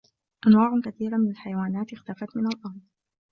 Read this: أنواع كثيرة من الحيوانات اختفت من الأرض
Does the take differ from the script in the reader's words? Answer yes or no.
no